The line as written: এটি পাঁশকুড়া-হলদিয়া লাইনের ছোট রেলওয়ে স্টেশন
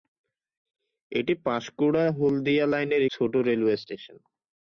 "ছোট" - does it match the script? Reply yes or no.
yes